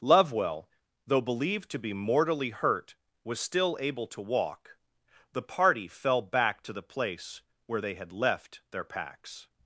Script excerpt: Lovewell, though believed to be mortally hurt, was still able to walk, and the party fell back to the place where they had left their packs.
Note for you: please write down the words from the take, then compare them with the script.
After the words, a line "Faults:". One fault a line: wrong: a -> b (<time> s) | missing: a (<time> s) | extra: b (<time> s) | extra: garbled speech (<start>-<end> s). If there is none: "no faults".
Lovewell, though believed to be mortally hurt, was still able to walk, the party fell back to the place where they had left their packs.
Faults:
missing: and (4.8 s)